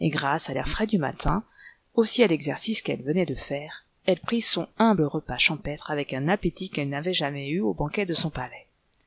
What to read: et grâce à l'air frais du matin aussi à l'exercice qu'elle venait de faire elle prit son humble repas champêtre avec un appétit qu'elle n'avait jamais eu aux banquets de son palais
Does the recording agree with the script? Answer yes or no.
yes